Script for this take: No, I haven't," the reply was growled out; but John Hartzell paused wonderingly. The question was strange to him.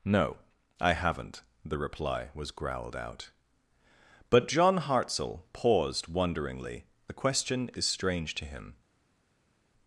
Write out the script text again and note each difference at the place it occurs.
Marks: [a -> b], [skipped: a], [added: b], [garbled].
No, I haven't," the reply was growled out; but John Hartzell paused wonderingly. The question [was -> is] strange to him.